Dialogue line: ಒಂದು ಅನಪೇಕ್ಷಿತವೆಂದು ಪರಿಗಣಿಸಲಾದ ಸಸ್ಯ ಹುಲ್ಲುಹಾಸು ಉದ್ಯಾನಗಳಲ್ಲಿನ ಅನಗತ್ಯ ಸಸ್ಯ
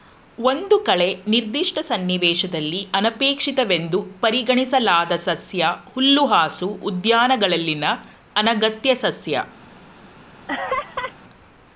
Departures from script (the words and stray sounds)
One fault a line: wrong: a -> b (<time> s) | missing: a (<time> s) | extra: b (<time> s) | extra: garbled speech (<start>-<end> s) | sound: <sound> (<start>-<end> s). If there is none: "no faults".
extra: ಕಳೆ ನಿರ್ದಿಷ್ಟ ಸನ್ನಿವೇಶದಲ್ಲಿ (0.8 s)
sound: laugh (10.5-11.1 s)